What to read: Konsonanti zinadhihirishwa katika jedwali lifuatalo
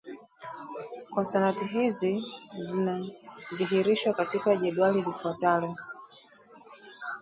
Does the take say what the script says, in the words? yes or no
no